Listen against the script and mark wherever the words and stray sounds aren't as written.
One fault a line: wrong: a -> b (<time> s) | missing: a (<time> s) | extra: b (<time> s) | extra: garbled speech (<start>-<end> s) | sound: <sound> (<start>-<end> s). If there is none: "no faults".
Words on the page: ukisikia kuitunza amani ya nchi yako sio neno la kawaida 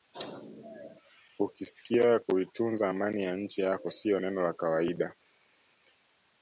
no faults